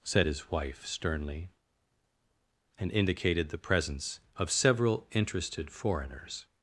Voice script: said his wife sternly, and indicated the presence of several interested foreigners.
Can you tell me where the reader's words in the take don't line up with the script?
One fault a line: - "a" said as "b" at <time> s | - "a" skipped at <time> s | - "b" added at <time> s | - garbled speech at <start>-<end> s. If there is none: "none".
none